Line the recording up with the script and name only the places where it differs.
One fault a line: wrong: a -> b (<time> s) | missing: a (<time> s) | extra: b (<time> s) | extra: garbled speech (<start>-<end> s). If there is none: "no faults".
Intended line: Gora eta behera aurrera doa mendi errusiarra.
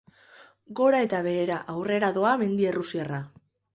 no faults